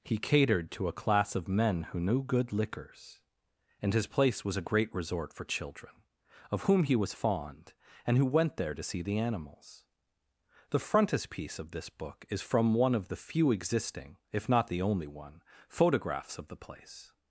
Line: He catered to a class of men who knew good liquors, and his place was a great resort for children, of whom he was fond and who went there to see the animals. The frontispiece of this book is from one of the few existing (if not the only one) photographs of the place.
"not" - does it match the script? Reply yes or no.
yes